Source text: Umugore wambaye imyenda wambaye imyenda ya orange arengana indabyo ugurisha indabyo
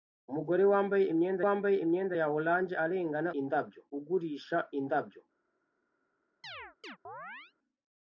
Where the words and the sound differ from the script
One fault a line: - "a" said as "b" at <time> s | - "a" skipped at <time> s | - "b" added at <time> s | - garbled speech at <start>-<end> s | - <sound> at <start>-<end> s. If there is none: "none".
- chirp at 6.4-7.5 s